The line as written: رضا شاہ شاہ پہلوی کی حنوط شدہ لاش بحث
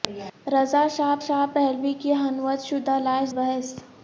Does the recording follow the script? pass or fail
pass